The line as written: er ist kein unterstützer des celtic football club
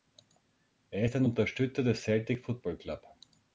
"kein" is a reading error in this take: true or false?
true